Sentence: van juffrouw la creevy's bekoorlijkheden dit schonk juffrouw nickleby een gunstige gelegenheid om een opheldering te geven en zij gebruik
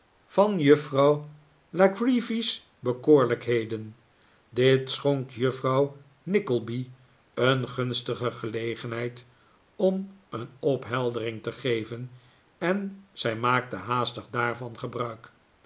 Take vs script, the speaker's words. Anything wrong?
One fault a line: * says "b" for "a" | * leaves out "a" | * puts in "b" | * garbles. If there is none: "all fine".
* puts in "maakte haastig daarvan"